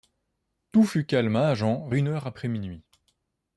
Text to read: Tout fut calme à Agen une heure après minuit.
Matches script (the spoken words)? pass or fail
pass